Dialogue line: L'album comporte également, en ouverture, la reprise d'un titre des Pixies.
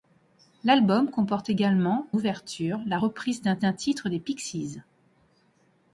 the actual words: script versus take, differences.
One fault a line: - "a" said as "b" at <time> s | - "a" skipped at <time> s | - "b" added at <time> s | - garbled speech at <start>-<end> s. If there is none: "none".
- "en" skipped at 2.1 s
- "d'un" added at 3.6 s